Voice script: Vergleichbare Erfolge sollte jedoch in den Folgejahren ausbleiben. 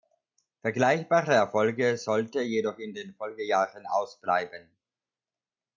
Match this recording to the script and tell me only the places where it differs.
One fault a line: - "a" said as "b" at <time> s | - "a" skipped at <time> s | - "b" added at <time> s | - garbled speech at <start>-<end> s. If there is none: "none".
none